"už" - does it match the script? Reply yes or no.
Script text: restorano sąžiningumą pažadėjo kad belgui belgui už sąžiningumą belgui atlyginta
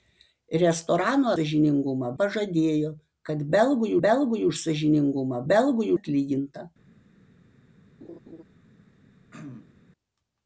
yes